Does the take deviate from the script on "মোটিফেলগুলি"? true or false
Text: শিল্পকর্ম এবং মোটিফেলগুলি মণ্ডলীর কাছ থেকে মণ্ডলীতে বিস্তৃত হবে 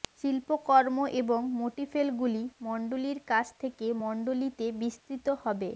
false